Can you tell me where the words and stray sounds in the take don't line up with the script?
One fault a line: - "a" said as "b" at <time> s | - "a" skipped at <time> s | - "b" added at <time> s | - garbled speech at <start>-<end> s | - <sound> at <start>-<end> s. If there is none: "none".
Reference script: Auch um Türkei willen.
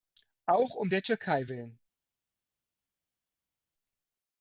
- "der" added at 0.9 s